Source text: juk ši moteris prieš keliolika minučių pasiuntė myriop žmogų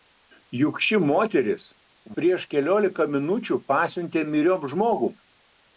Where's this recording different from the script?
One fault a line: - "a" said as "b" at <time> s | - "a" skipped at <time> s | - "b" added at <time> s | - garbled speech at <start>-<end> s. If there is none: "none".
none